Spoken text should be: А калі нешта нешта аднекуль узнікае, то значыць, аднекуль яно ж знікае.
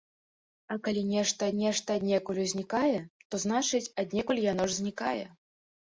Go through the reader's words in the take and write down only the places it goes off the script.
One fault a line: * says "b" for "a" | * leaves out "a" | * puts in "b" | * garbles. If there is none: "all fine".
all fine